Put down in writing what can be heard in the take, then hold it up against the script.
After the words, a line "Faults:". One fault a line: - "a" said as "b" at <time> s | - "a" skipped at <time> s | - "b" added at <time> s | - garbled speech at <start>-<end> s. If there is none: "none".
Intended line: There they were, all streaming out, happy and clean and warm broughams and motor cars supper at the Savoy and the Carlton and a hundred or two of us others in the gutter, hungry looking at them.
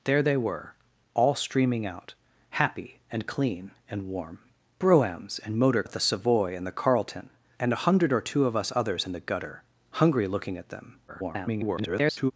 There they were, all streaming out, happy and clean and warm broughams and motor at the Savoy and the Carlton and a hundred or two of us others in the gutter, hungry looking at them. [garbled]
Faults:
- "cars supper" skipped at 5.8 s
- garbled speech at 11.1-12.3 s